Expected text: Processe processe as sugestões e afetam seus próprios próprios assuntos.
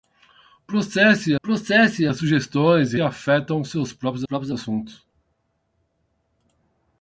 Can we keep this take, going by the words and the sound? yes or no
yes